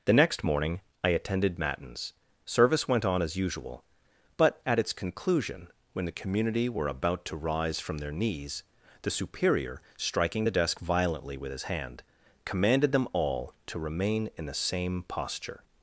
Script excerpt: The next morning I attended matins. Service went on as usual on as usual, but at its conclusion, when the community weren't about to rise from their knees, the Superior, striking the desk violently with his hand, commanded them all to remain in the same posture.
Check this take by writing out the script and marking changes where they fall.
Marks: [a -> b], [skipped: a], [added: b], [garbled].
The next morning I attended matins. Service went on as usual [skipped: on as usual,] but at its conclusion, when the community [weren't -> were] about to rise from their knees, the Superior, striking the desk violently with his hand, commanded them all to remain in the same posture.